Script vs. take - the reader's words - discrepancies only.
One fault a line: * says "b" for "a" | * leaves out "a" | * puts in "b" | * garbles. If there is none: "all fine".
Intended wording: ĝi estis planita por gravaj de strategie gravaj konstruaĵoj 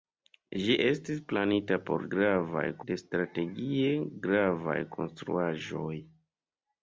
all fine